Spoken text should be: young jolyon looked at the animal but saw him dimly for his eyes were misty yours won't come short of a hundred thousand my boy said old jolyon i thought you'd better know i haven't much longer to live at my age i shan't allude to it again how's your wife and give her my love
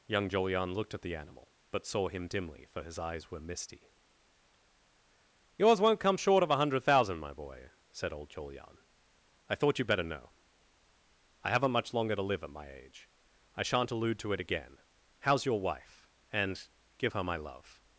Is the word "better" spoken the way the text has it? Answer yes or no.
yes